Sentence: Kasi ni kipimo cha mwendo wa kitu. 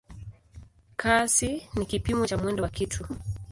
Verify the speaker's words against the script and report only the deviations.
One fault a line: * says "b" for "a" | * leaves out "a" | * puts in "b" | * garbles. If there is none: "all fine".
all fine